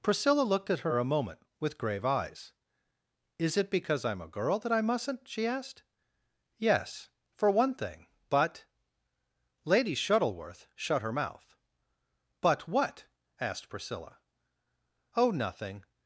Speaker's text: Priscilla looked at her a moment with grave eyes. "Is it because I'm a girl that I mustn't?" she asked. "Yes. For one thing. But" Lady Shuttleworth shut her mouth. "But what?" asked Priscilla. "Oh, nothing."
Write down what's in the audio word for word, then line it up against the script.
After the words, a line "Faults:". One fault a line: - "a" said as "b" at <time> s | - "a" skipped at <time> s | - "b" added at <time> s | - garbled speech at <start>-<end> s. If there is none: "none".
Priscilla looked at her a moment with grave eyes. "Is it because I'm a girl that I mustn't?" she asked. "Yes. For one thing. But" Lady Shuttleworth shut her mouth. "But what?" asked Priscilla. "Oh, nothing."
Faults:
none